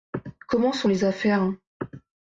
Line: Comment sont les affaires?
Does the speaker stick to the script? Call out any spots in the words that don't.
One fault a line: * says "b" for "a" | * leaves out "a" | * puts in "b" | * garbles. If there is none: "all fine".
all fine